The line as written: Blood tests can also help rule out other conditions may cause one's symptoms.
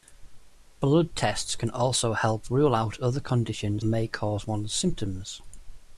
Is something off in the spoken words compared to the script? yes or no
no